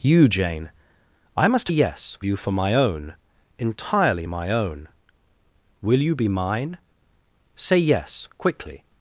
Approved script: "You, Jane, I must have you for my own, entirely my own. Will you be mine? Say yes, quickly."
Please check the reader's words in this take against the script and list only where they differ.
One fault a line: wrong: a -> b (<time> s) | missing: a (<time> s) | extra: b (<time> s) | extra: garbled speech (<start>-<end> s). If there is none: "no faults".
wrong: have -> yes (1.7 s)